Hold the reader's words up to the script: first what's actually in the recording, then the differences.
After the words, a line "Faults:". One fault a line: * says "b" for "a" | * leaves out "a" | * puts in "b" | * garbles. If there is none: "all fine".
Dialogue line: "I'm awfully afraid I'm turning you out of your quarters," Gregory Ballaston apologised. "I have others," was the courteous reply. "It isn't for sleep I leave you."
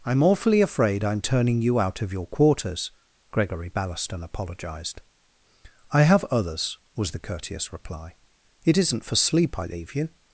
"I'm awfully afraid I'm turning you out of your quarters," Gregory Ballaston apologised. "I have others," was the courteous reply. "It isn't for sleep I leave you."
Faults:
all fine